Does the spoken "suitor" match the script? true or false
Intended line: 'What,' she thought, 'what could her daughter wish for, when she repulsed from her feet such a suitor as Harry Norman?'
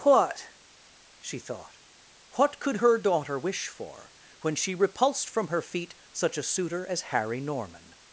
true